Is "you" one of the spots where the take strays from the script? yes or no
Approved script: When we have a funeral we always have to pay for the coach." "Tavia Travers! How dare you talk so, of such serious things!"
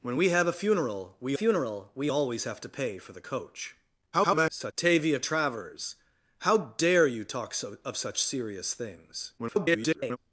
no